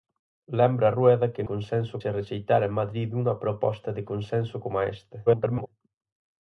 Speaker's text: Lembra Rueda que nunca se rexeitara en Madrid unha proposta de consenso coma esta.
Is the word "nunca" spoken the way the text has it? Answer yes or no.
no